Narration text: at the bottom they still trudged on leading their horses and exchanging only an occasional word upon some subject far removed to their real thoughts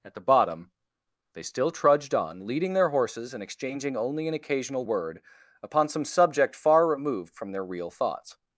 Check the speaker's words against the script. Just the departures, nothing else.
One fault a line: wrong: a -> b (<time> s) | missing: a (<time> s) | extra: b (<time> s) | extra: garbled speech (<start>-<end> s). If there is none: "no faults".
wrong: to -> from (7.3 s)